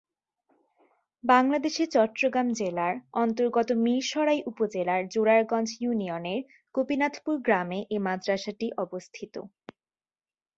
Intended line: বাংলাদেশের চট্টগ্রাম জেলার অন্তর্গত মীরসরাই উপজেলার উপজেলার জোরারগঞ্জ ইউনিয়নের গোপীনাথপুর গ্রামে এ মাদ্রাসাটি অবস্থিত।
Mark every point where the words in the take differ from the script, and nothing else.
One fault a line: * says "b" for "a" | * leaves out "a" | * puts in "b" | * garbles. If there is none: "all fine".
* leaves out "উপজেলার"